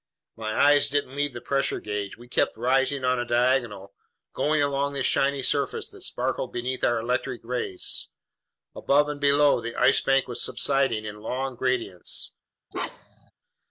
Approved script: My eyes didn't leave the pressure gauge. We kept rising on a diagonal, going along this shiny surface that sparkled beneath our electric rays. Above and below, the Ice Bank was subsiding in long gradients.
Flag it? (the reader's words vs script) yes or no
no